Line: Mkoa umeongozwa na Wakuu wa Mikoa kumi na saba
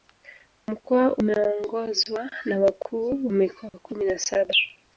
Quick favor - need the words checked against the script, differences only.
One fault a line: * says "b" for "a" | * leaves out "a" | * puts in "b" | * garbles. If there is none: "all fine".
* leaves out "wa"